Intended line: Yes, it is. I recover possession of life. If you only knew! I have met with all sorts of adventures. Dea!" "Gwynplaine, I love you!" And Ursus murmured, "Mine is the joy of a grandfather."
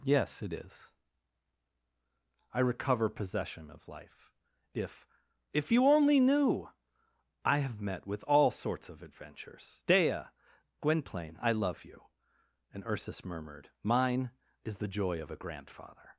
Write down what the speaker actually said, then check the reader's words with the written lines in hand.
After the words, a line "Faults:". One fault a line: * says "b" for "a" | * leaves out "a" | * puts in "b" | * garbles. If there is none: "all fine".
Yes, it is. I recover possession of life. If If you only knew! I have met with all sorts of adventures. Dea!" "Gwynplaine, I love you!" And Ursus murmured, "Mine is the joy of a grandfather."
Faults:
* puts in "If"